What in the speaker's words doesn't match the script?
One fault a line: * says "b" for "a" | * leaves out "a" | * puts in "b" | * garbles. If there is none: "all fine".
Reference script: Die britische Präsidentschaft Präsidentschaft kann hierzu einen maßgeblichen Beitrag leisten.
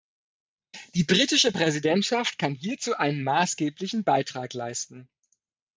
* leaves out "Präsidentschaft"